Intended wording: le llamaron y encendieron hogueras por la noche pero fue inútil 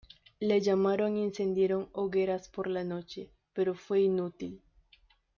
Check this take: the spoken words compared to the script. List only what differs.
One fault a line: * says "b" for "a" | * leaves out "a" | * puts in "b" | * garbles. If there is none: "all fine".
all fine